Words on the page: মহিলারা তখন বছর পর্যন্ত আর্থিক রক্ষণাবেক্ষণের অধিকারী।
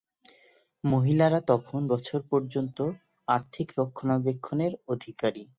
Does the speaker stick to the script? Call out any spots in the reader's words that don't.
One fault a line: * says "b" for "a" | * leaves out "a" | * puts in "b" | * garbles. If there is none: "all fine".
all fine